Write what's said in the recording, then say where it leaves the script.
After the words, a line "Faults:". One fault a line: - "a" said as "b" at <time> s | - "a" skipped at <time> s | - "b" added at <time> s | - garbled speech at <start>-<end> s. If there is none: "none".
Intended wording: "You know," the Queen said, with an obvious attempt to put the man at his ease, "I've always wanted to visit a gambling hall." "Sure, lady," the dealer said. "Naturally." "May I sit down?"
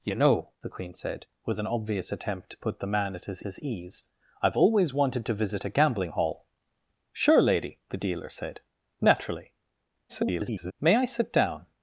"You know," the Queen said, with an obvious attempt to put the man at his his ease, "I've always wanted to visit a gambling hall." "Sure, lady," the dealer said. "Naturally." [garbled] "May I sit down?"
Faults:
- "his" added at 3.4 s
- garbled speech at 10.1-10.7 s